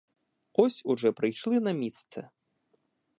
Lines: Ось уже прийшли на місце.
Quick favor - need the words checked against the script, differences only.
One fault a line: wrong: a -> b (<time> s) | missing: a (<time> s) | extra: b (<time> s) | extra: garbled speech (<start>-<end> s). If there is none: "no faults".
no faults